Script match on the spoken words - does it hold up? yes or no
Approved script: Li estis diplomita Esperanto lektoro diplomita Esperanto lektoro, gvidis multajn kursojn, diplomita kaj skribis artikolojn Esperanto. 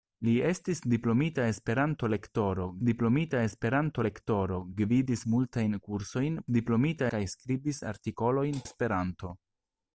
yes